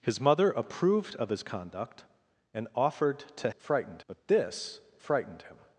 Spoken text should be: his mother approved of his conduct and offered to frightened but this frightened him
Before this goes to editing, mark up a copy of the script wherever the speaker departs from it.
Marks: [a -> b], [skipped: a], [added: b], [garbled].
his mother approved of his conduct and offered to frightened but this frightened him